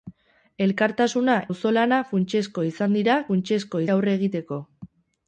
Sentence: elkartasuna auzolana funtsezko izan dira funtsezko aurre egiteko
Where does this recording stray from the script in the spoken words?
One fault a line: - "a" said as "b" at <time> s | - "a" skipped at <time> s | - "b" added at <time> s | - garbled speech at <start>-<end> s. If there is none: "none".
none